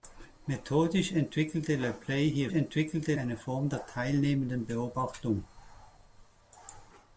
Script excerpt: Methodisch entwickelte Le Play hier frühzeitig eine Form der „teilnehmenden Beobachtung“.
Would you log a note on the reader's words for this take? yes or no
yes